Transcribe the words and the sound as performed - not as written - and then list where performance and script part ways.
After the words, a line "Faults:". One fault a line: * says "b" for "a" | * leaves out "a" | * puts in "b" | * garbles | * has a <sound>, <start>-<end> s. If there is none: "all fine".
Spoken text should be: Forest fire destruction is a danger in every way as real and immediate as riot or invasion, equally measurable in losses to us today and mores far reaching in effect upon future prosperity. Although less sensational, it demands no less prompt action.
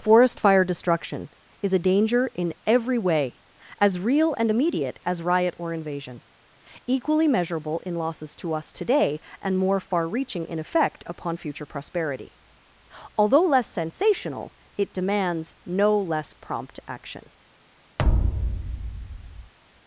Forest fire destruction is a danger in every way as real and immediate as riot or invasion, equally measurable in losses to us today and more far reaching in effect upon future prosperity. Although less sensational, it demands no less prompt action.
Faults:
* says "more" for "mores"
* has a thud, 18.0-19.5 s